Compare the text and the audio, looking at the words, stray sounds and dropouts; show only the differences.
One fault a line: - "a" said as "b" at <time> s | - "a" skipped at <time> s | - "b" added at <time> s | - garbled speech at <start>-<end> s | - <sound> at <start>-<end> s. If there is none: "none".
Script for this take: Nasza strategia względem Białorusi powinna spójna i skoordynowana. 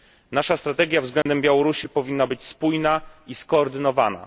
- dropout at 1.2-1.3 s
- "być" added at 2.2 s